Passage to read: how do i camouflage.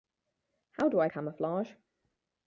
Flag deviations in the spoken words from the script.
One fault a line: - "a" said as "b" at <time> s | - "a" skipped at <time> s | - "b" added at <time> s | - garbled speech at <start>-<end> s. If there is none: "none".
none